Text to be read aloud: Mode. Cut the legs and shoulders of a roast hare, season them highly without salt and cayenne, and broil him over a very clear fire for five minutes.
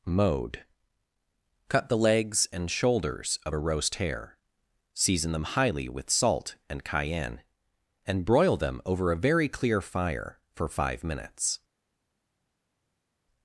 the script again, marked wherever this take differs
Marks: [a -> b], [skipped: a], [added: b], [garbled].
Mode. Cut the legs and shoulders of a roast hare, season them highly [without -> with] salt and cayenne, and broil [him -> them] over a very clear fire for five minutes.